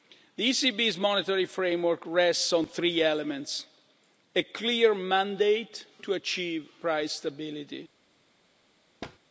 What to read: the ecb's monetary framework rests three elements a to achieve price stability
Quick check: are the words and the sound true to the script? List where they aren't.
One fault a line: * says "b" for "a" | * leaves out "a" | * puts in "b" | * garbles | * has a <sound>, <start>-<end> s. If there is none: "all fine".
* puts in "on"
* puts in "clear mandate"
* has a thud, 9.0-9.2 s